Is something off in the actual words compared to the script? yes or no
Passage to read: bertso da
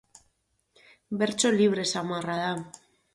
yes